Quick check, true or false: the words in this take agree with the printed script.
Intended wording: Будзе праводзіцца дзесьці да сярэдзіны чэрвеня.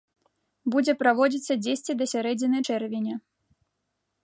true